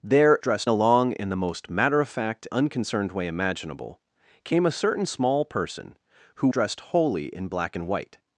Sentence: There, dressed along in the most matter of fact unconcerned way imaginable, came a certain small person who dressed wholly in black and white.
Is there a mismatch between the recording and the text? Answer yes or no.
no